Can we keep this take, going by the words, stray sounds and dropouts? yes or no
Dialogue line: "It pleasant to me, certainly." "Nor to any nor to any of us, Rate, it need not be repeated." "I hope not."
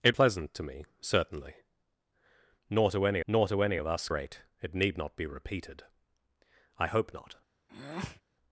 no